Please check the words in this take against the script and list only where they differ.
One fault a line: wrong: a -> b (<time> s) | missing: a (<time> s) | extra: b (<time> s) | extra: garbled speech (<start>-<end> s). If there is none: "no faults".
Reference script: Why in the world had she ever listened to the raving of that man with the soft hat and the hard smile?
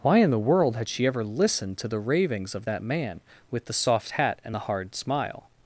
wrong: raving -> ravings (2.0 s)